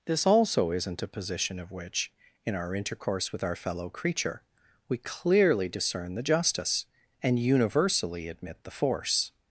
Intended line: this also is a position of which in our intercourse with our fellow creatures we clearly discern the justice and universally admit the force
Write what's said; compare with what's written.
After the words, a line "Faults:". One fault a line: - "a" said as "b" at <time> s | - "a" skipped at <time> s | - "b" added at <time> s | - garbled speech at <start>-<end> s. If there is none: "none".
this also isn't a position of which in our intercourse with our fellow creature we clearly discern the justice and universally admit the force
Faults:
- "is" said as "isn't" at 0.7 s
- "creatures" said as "creature" at 3.9 s